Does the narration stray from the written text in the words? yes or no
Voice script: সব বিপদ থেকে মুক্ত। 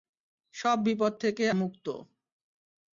no